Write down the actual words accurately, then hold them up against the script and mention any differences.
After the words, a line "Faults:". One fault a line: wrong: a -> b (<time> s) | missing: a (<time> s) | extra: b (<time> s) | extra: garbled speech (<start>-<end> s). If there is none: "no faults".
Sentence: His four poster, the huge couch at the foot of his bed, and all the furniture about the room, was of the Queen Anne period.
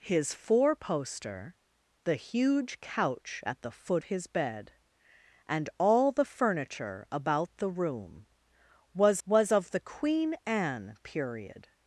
His four poster, the huge couch at the foot his bed, and all the furniture about the room, was was of the Queen Anne period.
Faults:
missing: of (4.0 s)
extra: was (9.2 s)